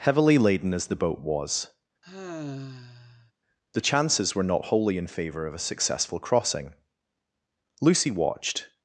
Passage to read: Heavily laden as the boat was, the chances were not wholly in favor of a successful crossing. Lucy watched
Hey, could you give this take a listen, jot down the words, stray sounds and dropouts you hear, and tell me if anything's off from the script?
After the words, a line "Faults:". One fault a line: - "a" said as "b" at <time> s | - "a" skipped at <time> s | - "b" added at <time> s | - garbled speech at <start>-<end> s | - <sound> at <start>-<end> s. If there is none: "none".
Heavily laden as the boat was, the chances were not wholly in favor of a successful crossing. Lucy watched
Faults:
- sigh at 2.0-3.3 s